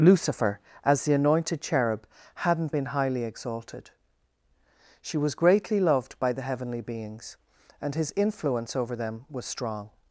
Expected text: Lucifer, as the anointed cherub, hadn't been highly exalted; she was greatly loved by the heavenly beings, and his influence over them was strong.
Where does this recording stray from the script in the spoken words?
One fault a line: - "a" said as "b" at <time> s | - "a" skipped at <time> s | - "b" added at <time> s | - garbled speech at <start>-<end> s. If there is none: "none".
none